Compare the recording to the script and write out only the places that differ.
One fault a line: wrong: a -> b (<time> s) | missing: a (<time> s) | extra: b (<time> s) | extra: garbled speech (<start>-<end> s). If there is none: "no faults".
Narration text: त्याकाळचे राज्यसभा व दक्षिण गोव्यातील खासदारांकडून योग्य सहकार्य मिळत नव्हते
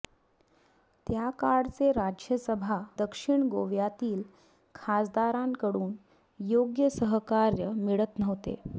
missing: व (2.8 s)